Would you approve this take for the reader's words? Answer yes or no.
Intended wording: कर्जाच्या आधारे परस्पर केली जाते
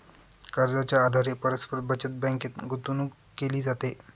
no